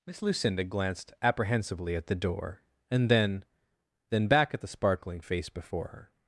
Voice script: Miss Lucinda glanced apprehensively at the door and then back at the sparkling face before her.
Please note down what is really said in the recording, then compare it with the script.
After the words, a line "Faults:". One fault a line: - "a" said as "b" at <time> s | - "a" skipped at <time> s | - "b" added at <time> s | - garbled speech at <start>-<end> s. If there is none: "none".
Miss Lucinda glanced apprehensively at the door and then then back at the sparkling face before her.
Faults:
- "then" added at 4.1 s